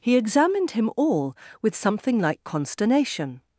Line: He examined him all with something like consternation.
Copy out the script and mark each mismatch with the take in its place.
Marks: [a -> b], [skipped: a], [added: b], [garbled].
He examined him all with something like consternation.